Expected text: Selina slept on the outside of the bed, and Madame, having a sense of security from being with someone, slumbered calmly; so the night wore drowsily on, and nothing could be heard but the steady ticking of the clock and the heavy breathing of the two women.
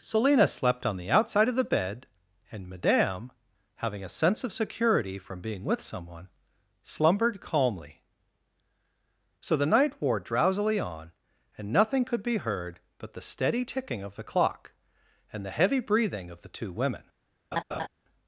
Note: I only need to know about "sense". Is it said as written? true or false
true